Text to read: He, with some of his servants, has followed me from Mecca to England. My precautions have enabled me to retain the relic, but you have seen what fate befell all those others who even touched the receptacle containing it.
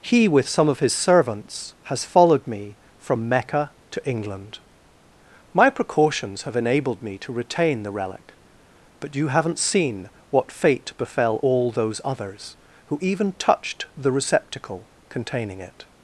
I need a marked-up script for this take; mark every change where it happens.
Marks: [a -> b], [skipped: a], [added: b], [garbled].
He, with some of his servants, has followed me from Mecca to England. My precautions have enabled me to retain the relic, but you [have -> haven't] seen what fate befell all those others who even touched the receptacle containing it.